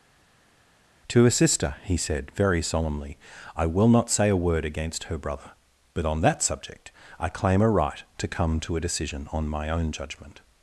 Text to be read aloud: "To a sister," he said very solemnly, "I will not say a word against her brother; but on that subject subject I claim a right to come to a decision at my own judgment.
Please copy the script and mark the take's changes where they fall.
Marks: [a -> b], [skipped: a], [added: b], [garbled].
"To a sister," he said very solemnly, "I will not say a word against her brother; but on that subject [skipped: subject] I claim a right to come to a decision [at -> on] my own judgment.